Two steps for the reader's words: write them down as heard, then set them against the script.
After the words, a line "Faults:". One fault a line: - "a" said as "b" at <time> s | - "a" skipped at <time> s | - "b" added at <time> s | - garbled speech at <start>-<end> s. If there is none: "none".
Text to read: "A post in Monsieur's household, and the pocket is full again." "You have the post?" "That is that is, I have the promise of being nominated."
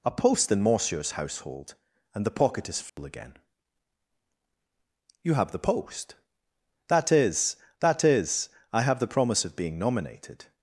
"A post in Monsieur's household, and the pocket is full again." "You have the post?" "That is that is, I have the promise of being nominated."
Faults:
none